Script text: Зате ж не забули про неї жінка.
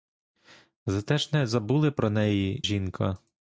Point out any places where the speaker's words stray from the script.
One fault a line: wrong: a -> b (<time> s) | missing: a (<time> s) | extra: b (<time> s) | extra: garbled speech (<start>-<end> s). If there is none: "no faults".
no faults